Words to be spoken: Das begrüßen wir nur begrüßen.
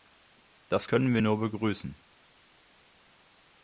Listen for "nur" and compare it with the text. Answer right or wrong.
right